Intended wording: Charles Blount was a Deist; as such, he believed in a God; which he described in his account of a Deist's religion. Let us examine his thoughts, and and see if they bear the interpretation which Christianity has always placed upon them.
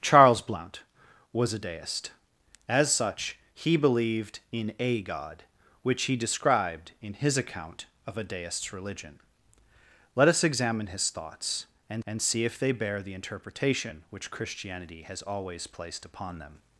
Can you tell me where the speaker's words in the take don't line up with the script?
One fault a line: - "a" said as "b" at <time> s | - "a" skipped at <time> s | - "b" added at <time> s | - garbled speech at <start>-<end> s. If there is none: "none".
none